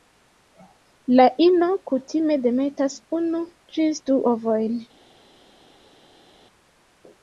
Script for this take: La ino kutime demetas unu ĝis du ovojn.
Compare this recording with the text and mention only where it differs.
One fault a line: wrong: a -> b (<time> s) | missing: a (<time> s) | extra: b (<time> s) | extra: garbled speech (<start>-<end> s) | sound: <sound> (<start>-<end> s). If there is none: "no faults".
no faults